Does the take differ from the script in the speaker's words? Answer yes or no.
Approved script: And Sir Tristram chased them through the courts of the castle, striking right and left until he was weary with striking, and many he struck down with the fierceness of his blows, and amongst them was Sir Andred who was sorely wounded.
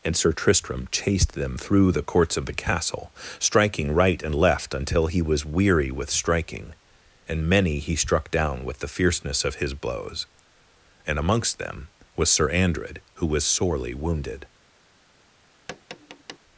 no